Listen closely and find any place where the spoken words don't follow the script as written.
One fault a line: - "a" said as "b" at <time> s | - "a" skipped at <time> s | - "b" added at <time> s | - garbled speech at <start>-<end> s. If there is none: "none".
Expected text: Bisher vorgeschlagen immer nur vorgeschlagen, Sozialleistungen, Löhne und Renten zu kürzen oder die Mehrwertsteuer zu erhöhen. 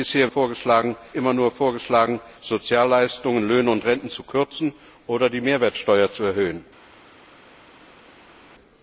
none